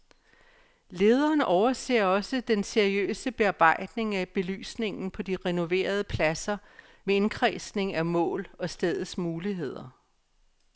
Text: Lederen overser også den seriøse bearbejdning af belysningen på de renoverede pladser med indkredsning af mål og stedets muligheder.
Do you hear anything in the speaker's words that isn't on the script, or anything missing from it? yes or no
no